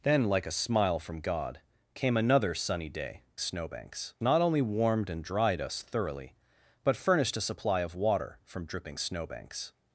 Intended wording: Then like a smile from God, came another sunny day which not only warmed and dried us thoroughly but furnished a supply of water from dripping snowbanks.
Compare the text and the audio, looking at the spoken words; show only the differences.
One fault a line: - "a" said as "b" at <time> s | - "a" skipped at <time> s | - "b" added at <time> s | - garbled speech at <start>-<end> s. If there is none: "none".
- "which" said as "snowbanks" at 3.4 s